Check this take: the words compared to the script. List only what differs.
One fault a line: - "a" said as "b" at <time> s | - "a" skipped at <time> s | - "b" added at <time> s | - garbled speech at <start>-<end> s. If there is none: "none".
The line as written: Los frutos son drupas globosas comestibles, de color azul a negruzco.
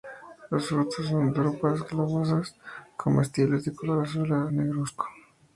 none